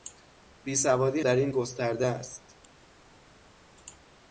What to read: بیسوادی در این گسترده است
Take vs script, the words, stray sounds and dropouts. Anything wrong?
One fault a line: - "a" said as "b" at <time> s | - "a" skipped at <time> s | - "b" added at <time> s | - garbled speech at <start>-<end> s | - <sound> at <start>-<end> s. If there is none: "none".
none